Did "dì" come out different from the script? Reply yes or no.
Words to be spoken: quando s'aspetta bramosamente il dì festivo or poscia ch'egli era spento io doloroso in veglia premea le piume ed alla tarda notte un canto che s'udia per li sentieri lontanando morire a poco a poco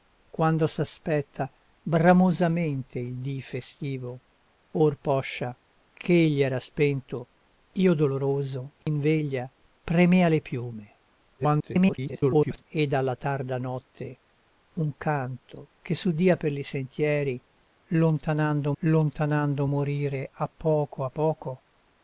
no